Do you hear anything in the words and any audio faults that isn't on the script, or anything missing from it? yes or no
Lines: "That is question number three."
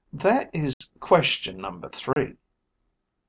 yes